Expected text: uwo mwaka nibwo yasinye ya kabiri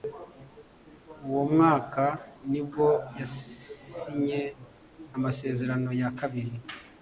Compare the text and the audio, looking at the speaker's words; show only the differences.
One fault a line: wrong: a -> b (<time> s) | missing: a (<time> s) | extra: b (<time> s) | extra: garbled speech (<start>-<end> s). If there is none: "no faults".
extra: amasezerano (5.1 s)